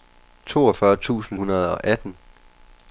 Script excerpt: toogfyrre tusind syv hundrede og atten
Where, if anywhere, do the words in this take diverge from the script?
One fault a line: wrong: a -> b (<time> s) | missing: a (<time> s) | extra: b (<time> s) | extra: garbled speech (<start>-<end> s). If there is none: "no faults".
missing: syv (1.4 s)